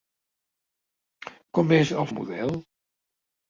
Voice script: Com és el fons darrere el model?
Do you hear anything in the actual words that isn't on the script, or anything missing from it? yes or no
yes